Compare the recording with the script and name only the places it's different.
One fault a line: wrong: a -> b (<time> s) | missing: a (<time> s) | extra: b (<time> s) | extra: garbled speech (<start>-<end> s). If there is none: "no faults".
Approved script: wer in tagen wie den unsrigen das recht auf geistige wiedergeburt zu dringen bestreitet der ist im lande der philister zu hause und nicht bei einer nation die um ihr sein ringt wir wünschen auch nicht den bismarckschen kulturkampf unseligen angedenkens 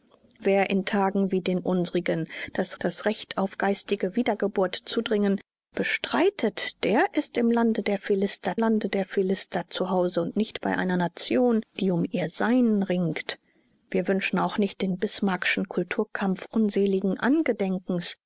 extra: das (2.8 s)
extra: lande der philister (8.5 s)